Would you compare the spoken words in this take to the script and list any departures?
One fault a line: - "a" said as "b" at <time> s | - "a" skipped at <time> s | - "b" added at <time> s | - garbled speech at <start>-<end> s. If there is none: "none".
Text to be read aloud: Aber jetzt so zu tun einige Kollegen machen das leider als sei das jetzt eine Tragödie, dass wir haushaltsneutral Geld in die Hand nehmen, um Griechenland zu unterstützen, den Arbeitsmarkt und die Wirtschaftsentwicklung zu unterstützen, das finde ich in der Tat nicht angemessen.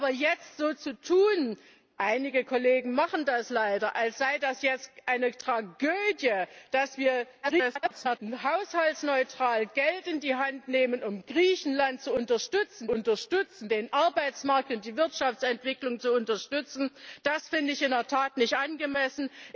- garbled speech at 7.4-8.2 s
- "unterstützen" added at 12.9 s